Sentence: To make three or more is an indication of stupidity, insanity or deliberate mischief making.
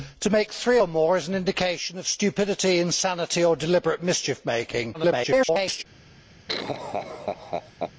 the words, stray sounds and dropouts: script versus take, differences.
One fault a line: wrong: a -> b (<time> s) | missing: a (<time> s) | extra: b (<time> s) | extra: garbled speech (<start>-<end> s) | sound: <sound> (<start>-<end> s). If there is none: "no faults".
extra: garbled speech (4.9-5.8 s)
sound: laugh (6.5-7.9 s)